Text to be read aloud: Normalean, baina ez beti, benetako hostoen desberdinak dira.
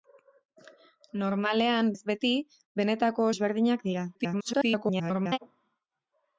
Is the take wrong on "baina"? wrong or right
wrong